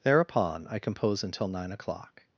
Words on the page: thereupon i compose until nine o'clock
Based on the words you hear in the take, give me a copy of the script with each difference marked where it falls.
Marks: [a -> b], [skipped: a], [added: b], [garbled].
thereupon i compose until nine o'clock